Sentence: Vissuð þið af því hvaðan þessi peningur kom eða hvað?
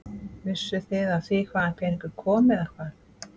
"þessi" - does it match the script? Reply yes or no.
no